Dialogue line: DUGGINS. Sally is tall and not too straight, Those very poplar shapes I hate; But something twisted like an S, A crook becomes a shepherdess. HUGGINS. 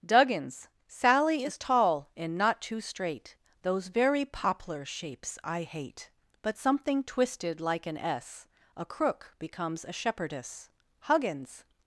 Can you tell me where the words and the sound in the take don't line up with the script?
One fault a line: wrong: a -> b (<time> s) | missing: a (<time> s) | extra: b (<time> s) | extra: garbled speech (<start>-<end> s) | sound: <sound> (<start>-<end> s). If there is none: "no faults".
no faults